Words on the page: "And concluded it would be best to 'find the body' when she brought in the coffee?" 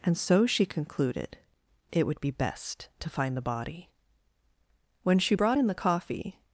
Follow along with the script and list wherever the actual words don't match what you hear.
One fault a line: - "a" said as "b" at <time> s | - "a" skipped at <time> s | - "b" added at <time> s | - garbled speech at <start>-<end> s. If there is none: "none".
- "so she" added at 0.2 s